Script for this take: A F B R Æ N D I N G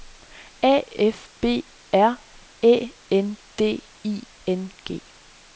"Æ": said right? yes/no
yes